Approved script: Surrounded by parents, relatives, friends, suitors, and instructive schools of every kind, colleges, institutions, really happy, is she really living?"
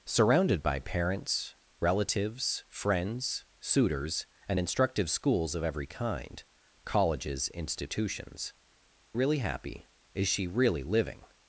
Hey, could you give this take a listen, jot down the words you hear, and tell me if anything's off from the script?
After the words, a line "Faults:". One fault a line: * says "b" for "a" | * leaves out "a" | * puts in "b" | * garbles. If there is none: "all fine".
Surrounded by parents, relatives, friends, suitors, and instructive schools of every kind, colleges, institutions, really happy, is she really living?"
Faults:
all fine